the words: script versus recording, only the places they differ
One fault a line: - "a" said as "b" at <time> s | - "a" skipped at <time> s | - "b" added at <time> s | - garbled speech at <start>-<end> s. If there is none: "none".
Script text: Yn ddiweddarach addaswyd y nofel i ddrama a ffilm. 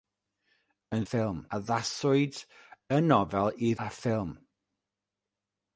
- "ddiweddarach" said as "ffilm" at 1.1 s
- "ddrama" skipped at 3.7 s